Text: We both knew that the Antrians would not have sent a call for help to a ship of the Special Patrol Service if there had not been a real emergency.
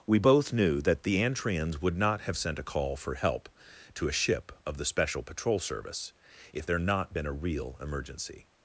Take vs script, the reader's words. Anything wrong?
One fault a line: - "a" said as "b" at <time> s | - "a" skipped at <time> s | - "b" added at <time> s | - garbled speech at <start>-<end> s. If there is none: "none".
- "had" skipped at 6.8 s